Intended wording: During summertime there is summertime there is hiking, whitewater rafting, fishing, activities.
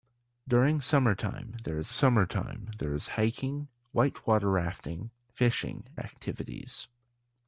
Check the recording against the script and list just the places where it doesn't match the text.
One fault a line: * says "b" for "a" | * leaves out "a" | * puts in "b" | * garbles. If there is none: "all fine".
all fine